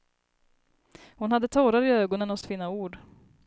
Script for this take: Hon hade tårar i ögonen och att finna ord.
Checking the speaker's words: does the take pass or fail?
pass